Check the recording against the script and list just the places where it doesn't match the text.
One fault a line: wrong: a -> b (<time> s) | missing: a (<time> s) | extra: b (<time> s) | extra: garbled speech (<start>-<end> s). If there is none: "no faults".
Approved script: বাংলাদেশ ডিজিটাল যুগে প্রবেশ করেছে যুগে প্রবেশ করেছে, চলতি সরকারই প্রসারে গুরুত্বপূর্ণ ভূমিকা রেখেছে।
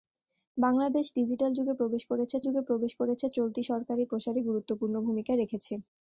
no faults